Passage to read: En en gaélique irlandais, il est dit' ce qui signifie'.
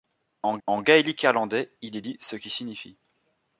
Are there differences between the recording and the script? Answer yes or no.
no